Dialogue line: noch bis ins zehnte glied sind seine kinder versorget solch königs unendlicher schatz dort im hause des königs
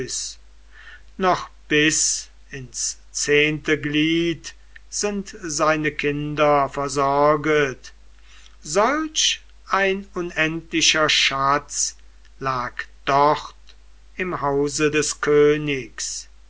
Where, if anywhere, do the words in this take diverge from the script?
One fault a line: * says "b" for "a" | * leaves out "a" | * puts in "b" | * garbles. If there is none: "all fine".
* says "ein" for "königs"
* puts in "lag"